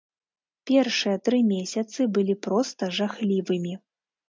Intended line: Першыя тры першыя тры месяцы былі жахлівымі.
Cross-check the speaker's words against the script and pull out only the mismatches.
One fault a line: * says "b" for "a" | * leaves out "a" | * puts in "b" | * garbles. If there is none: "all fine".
* leaves out "першыя тры"
* puts in "проста"